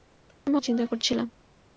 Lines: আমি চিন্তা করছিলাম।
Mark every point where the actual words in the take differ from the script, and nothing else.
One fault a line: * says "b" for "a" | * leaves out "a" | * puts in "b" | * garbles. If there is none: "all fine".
all fine